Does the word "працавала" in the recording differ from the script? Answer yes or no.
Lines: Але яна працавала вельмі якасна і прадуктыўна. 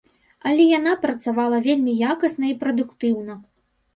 no